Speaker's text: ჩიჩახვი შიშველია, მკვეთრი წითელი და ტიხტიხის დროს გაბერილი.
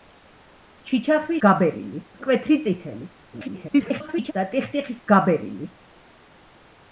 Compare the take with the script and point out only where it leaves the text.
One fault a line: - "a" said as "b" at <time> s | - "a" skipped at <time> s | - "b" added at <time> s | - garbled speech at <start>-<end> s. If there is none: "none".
- "შიშველია" said as "გაბერილი" at 1.4 s
- garbled speech at 3.3-4.3 s
- "დროს" skipped at 5.0 s